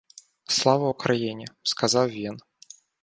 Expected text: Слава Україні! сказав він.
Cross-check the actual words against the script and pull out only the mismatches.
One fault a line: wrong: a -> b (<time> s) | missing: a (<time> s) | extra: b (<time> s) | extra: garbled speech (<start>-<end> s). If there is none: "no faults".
no faults